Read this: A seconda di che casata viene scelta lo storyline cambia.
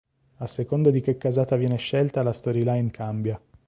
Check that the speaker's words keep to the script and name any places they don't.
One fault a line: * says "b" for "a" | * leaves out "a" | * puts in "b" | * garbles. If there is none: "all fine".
* says "la" for "lo"